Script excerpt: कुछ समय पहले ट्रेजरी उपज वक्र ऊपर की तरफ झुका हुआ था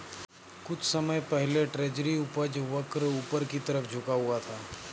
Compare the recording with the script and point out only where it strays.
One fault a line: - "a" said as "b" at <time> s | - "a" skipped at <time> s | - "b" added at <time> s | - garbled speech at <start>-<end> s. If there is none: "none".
none